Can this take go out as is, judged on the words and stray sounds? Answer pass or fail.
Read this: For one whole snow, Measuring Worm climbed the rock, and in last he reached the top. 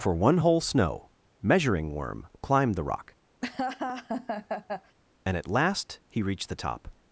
fail